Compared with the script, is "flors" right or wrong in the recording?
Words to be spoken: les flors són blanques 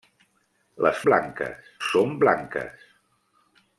wrong